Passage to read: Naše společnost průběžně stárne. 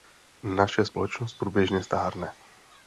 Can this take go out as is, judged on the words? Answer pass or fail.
pass